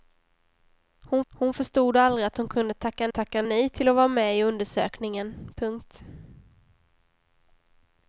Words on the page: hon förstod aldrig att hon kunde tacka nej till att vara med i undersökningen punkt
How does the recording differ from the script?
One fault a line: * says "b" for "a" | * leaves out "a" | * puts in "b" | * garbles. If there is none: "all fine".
* puts in "hon"
* puts in "tacka"